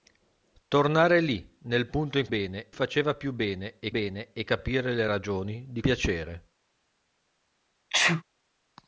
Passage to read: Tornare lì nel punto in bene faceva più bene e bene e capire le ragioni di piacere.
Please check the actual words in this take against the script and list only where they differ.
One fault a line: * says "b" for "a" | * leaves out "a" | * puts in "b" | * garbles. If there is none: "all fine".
all fine